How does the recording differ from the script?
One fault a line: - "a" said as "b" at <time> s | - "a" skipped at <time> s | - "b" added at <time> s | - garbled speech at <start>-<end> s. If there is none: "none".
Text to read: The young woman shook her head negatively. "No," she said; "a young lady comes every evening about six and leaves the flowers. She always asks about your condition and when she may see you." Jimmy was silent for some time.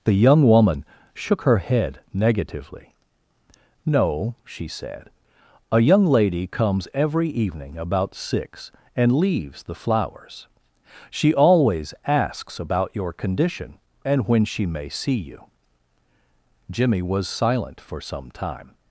none